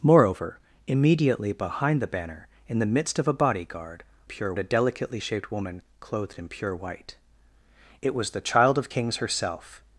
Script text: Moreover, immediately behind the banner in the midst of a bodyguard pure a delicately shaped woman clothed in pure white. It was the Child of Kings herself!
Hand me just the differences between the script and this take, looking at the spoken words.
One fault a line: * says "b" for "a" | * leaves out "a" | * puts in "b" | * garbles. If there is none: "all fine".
all fine